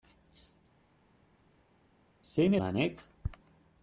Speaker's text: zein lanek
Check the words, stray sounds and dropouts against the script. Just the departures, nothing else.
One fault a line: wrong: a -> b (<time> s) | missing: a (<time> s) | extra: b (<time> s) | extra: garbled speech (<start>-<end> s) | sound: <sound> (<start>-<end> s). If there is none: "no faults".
no faults